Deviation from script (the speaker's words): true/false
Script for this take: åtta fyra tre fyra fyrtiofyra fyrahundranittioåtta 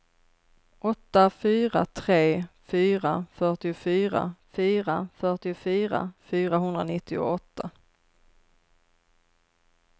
true